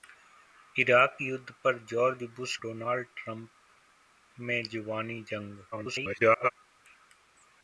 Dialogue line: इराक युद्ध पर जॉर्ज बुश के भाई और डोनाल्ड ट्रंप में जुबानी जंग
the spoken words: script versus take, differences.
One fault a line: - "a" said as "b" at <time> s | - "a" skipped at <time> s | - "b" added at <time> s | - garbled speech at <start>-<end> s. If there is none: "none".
- "के भाई और" skipped at 2.5 s
- garbled speech at 5.7-6.5 s